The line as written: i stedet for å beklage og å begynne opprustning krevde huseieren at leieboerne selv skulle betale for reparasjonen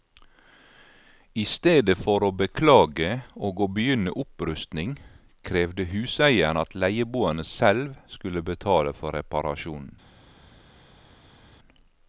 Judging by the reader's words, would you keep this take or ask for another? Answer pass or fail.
pass